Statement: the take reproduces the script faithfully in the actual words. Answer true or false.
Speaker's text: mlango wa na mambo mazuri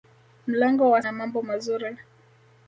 true